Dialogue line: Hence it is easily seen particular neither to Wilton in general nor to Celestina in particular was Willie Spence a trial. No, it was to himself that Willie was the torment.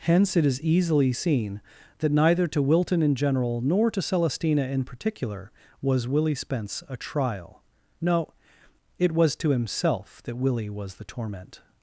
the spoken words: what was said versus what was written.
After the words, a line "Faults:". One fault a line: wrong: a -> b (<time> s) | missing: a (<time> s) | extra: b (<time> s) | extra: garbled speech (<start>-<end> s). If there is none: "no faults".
Hence it is easily seen that neither to Wilton in general nor to Celestina in particular was Willie Spence a trial. No, it was to himself that Willie was the torment.
Faults:
wrong: particular -> that (2.0 s)